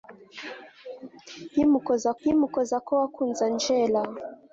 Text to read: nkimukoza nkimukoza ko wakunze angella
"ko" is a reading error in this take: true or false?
false